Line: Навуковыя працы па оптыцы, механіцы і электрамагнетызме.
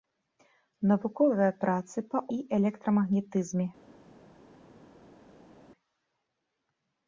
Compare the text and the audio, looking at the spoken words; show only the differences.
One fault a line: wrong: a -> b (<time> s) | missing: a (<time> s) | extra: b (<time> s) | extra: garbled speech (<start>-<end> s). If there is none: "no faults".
missing: оптыцы механіцы (2.2 s)